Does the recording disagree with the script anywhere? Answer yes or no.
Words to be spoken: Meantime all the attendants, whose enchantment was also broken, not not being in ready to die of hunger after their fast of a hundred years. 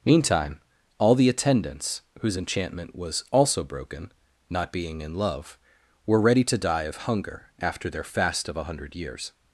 yes